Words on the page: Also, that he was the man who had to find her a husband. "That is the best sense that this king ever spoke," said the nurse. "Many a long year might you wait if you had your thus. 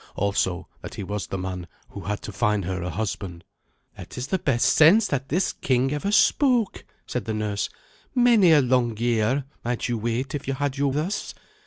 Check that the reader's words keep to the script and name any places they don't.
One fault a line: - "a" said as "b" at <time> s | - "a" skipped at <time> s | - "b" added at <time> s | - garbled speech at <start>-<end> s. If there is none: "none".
none